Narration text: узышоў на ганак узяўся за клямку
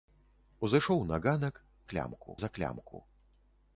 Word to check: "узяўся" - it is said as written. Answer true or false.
false